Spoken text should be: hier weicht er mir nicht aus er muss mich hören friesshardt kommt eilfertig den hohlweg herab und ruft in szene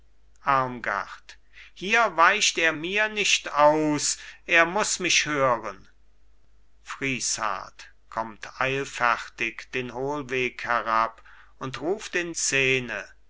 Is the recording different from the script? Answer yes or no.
no